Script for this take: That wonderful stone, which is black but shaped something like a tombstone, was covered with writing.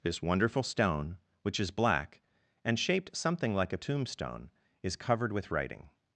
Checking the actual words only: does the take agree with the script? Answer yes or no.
no